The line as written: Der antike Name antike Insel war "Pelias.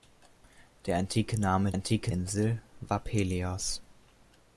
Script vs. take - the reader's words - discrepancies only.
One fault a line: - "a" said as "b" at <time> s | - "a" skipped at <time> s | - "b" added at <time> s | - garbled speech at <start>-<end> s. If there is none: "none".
none